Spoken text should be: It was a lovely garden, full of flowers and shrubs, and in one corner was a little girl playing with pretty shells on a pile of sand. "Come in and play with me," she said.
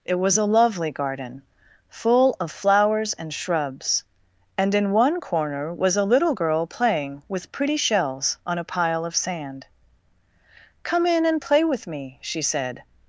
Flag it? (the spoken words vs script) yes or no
no